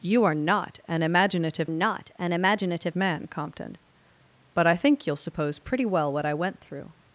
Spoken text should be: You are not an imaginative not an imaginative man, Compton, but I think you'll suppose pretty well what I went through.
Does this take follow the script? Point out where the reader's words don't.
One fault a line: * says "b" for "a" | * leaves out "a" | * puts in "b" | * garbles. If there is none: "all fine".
all fine